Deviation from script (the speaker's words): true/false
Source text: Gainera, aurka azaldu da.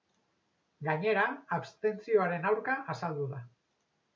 true